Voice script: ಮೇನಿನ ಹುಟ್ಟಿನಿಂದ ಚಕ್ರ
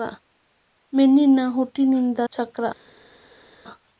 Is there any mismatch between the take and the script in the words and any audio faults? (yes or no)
no